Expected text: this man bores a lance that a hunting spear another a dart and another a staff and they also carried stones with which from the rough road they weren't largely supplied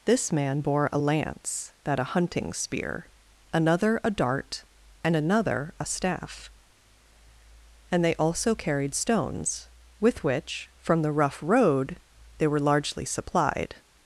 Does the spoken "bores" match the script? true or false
false